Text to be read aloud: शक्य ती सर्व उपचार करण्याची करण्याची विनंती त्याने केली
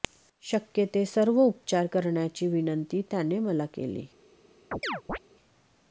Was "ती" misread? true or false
true